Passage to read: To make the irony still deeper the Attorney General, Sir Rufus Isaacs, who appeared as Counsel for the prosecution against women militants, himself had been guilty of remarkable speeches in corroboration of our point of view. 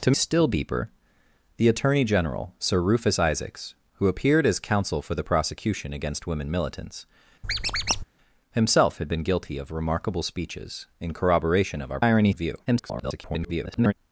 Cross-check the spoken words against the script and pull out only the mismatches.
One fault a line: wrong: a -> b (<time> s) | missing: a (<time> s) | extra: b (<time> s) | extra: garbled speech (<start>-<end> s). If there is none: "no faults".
missing: make the irony (0.1 s)
wrong: point -> irony (12.0 s)
extra: garbled speech (12.6-13.9 s)